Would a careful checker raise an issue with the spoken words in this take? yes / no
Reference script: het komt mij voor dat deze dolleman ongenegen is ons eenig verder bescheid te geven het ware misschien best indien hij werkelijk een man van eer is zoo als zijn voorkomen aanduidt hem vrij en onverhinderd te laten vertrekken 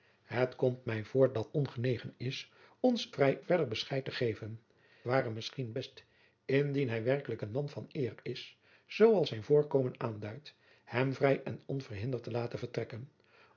yes